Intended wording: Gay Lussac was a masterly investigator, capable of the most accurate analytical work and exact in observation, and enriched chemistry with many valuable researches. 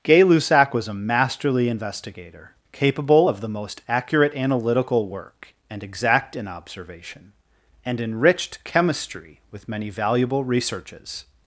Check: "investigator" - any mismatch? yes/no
no